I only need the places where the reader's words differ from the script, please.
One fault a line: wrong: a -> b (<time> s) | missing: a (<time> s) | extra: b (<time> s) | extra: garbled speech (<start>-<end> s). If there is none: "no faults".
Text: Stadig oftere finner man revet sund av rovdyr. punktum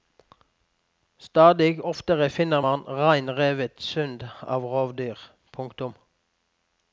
extra: rein (3.0 s)